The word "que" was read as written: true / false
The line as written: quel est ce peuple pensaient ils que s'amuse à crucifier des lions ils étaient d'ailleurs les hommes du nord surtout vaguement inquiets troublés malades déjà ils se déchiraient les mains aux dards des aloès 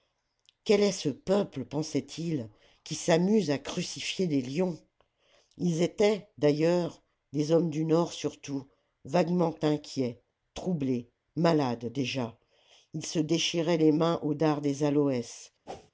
false